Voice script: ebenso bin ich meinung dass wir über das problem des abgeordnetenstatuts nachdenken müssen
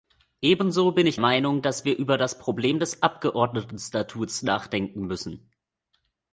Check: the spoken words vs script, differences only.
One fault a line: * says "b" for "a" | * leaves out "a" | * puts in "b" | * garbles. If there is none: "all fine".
all fine